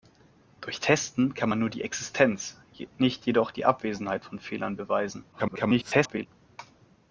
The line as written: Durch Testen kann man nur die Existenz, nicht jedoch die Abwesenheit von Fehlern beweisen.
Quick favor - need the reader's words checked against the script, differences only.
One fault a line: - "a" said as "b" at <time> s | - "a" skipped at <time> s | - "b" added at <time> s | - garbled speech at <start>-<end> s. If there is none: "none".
- garbled speech at 5.3-6.3 s